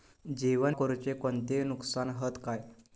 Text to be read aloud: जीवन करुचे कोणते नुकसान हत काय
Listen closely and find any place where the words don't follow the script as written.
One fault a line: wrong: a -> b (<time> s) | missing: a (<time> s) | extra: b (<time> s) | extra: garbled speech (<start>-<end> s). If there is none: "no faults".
no faults